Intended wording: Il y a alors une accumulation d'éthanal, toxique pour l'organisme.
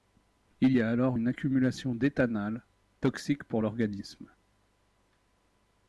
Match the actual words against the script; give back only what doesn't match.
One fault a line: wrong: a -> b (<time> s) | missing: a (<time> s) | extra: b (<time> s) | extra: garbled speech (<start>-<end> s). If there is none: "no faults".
no faults